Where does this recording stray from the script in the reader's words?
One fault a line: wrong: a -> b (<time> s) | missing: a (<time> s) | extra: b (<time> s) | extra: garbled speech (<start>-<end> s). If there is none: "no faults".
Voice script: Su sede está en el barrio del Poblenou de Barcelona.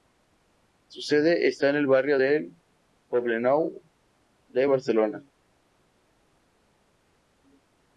no faults